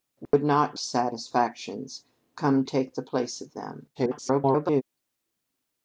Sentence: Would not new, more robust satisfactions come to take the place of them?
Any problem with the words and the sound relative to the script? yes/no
yes